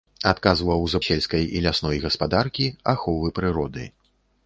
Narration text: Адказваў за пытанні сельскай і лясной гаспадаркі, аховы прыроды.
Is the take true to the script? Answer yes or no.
no